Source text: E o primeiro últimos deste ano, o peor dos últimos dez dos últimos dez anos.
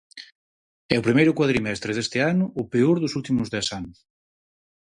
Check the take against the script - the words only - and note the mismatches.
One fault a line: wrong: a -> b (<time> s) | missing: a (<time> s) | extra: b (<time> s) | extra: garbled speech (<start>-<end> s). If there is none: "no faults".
wrong: últimos -> cuadrimestre (1.4 s)
missing: dos últimos dez (3.7 s)